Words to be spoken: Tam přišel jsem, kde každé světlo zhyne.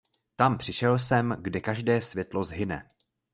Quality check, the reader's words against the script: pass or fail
pass